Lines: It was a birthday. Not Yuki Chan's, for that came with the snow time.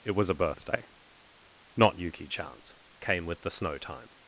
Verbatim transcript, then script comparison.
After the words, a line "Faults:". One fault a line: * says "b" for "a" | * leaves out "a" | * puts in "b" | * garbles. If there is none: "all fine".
It was a birthday. Not Yuki Chan's, came with the snow time.
Faults:
* leaves out "for that"